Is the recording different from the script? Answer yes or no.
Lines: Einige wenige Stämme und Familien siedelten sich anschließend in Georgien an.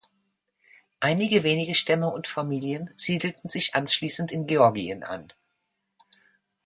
no